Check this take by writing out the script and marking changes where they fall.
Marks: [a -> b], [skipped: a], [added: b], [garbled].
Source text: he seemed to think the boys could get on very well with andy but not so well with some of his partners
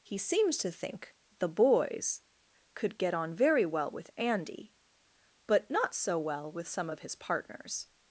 he [seemed -> seems] to think the boys could get on very well with andy but not so well with some of his partners